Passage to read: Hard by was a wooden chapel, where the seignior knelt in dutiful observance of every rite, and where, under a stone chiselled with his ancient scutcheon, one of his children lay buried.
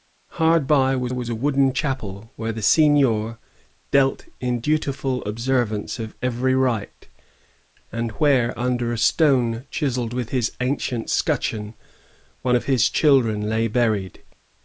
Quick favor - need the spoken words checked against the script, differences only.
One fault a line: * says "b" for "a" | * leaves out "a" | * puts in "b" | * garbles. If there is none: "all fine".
* puts in "was"